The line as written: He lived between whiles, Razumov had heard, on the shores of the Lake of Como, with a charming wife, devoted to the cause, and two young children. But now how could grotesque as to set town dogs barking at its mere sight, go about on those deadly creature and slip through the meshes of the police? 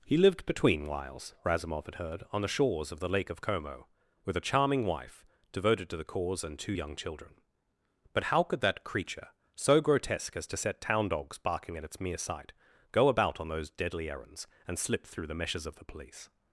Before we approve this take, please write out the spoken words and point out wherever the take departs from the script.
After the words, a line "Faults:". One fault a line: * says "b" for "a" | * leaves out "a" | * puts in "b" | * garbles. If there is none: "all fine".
He lived between whiles, Razumov had heard, on the shores of the Lake of Como, with a charming wife, devoted to the cause, and two young children. But how could that creature, so grotesque as to set town dogs barking at its mere sight, go about on those deadly errands and slip through the meshes of the police?
Faults:
* leaves out "now"
* puts in "that creature so"
* says "errands" for "creature"